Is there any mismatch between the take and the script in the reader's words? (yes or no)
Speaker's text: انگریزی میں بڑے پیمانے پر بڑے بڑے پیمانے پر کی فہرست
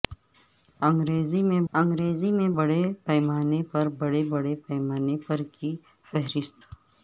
yes